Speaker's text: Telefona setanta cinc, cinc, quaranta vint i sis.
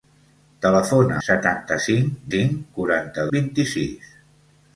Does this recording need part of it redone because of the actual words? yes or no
no